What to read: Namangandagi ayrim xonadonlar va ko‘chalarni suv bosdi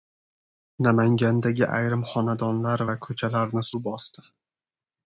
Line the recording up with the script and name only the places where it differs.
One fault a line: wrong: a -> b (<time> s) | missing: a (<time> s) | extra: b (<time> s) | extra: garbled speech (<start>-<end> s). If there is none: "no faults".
no faults